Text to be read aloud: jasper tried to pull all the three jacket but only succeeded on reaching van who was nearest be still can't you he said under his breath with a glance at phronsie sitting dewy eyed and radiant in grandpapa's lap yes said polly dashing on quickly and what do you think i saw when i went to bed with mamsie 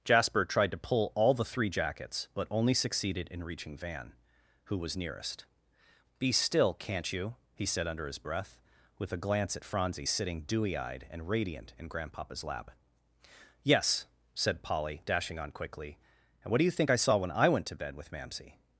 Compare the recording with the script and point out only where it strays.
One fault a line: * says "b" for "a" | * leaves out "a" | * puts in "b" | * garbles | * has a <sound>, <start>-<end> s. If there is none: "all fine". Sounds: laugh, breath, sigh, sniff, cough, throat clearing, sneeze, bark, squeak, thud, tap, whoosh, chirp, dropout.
* says "jackets" for "jacket"
* says "in" for "on"